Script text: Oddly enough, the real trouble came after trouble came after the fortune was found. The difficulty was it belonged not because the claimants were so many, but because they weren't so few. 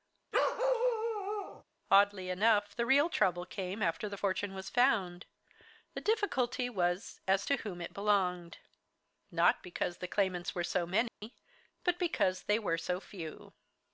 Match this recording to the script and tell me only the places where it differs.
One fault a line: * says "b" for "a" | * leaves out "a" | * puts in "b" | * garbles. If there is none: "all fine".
* leaves out "trouble came after"
* puts in "as to whom"
* says "were" for "weren't"